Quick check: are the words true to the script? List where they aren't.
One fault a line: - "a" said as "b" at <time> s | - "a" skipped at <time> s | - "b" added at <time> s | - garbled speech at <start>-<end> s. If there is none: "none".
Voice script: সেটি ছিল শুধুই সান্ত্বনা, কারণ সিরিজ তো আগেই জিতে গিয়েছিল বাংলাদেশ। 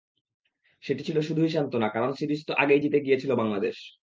none